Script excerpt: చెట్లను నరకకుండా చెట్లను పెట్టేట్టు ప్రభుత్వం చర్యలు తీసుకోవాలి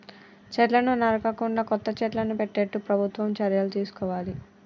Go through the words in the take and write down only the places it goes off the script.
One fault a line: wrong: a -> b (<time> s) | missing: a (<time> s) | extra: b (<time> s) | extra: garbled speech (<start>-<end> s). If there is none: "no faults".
extra: కొత్త (1.6 s)